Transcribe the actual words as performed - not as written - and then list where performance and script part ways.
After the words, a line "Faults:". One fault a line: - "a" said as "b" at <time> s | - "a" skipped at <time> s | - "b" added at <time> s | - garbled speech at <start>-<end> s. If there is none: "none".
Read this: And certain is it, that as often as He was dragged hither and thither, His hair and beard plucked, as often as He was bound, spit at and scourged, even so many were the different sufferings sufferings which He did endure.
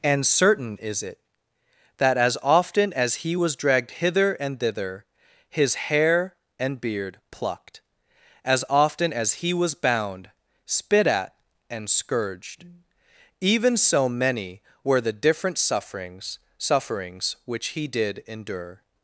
And certain is it, that as often as He was dragged hither and thither, His hair and beard plucked, as often as He was bound, spit at and scourged, even so many were the different sufferings sufferings which He did endure.
Faults:
none